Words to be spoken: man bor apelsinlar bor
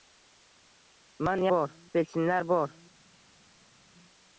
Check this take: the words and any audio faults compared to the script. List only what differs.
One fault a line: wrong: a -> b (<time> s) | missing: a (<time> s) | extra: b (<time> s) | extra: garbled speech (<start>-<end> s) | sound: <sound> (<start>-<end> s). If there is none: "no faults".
no faults